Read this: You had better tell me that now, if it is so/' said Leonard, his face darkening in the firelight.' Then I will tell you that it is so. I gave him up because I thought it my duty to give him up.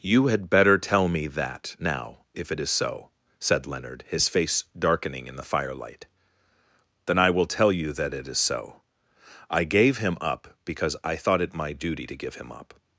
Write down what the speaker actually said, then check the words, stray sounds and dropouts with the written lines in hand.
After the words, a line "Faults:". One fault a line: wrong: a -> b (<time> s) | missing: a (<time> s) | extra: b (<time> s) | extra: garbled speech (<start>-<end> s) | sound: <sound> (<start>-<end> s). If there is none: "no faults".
You had better tell me that now, if it is so/' said Leonard, his face darkening in the firelight.' Then I will tell you that it is so. I gave him up because I thought it my duty to give him up.
Faults:
no faults